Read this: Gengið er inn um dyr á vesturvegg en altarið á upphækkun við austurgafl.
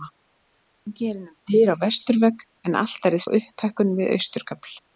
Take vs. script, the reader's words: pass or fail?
pass